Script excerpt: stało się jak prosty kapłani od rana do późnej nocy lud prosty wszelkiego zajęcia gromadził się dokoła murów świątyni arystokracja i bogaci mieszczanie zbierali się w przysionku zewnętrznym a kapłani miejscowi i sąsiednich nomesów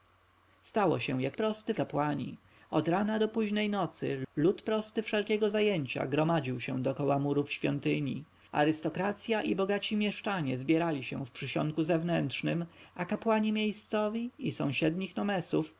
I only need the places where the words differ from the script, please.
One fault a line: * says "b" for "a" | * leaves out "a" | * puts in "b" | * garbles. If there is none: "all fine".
all fine